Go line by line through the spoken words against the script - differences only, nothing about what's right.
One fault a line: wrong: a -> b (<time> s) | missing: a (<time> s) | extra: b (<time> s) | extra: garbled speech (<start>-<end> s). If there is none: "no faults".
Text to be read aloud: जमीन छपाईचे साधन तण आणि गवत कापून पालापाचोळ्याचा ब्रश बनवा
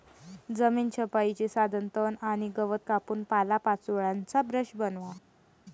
no faults